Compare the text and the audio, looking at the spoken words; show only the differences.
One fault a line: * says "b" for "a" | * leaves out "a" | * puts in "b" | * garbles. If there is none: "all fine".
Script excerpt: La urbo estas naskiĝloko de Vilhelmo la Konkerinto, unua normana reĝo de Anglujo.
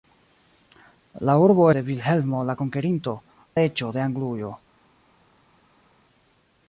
* leaves out "estas naskiĝloko"
* leaves out "unua normana"